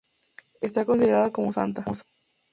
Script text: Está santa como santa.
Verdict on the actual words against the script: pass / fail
fail